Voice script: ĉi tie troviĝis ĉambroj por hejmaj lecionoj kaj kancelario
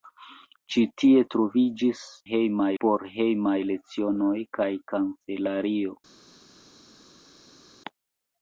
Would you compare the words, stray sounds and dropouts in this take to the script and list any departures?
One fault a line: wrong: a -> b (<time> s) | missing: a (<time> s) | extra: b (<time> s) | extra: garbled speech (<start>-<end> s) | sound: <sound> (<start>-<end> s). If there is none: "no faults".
wrong: ĉambroj -> hejmaj (2.3 s)